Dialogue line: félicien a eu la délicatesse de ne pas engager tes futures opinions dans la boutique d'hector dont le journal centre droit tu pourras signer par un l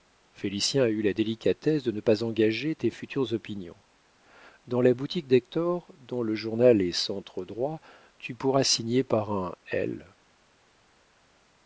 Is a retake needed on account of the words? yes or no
yes